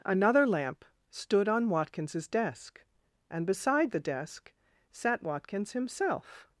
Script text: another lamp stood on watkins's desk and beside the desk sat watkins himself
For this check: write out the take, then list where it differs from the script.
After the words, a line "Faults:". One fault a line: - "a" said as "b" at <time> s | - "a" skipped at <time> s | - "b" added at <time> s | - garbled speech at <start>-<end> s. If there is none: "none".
another lamp stood on watkins's desk and beside the desk sat watkins himself
Faults:
none